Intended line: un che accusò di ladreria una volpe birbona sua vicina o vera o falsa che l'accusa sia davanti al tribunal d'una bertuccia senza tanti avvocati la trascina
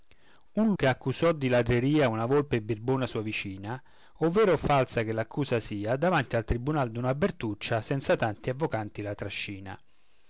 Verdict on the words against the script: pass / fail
pass